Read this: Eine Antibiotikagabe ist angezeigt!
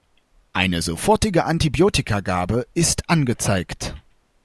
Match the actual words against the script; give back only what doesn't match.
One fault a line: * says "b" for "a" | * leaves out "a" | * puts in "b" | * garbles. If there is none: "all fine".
* puts in "sofortige"